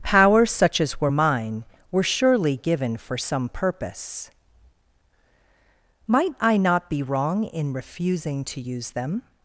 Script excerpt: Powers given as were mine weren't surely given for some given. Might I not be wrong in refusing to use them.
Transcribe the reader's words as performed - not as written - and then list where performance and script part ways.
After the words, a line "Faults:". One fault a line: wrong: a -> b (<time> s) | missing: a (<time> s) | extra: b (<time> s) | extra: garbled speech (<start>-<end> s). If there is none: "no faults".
Powers such as were mine were surely given for some purpose. Might I not be wrong in refusing to use them.
Faults:
wrong: given -> such (0.5 s)
wrong: weren't -> were (1.9 s)
wrong: given -> purpose (3.5 s)